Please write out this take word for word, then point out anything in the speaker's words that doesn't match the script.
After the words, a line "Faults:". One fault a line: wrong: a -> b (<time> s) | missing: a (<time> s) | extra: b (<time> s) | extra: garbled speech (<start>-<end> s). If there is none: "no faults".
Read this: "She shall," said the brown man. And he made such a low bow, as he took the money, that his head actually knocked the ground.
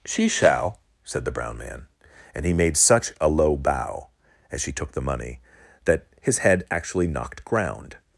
"She shall," said the brown man. And he made such a low bow, as she took the money, that his head actually knocked ground.
Faults:
wrong: he -> she (4.6 s)
missing: the (7.4 s)